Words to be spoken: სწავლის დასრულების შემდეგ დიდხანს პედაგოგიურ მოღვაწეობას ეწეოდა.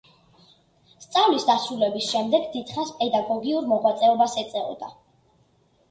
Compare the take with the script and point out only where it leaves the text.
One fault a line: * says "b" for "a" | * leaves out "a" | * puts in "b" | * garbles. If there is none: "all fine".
all fine